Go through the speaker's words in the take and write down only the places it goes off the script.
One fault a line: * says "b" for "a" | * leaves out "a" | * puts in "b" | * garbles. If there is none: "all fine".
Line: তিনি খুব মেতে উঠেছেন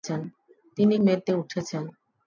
* leaves out "খুব"